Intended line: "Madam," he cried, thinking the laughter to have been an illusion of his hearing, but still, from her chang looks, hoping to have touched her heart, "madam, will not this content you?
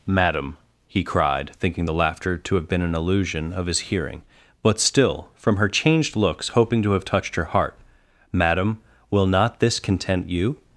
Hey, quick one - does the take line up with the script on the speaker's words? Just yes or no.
no